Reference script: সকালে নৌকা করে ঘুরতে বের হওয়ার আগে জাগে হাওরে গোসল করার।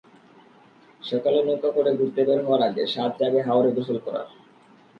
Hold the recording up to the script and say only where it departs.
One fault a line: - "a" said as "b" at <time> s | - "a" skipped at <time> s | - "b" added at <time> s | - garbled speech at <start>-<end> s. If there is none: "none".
- "সাধ" added at 2.9 s